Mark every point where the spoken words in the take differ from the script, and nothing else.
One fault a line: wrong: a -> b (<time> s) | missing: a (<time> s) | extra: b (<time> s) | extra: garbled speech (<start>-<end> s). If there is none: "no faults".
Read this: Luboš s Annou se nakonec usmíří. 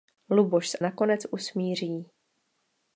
missing: Annou se (0.8 s)